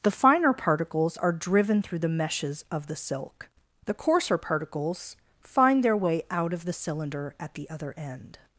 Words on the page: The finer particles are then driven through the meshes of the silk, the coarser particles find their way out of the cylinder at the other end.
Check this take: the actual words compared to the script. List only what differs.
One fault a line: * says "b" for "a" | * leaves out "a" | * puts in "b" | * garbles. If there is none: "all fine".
* leaves out "then"